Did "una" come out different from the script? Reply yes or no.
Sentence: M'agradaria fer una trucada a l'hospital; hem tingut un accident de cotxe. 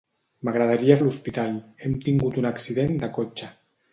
yes